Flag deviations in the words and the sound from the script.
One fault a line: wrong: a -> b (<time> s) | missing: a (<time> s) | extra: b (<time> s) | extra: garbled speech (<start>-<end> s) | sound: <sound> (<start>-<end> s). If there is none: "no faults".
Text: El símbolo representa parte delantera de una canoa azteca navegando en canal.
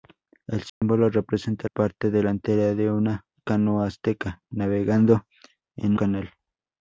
sound: dropout (0.7-0.8 s)